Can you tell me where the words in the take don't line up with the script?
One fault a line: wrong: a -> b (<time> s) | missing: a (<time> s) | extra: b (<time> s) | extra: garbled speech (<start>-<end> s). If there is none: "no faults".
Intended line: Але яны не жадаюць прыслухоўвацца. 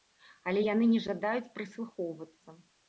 no faults